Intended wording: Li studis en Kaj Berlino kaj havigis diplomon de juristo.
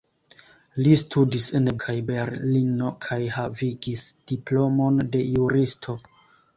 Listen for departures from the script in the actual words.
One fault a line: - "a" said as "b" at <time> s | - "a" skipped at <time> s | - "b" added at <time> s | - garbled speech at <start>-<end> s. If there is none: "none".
none